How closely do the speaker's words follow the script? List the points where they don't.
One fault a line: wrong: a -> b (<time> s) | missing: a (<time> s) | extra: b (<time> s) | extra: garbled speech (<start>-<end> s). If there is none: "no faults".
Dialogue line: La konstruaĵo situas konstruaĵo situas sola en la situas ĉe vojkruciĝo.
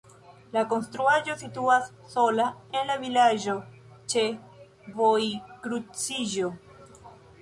missing: konstruaĵo situas (1.9 s)
wrong: situas -> vilaĝo (3.0 s)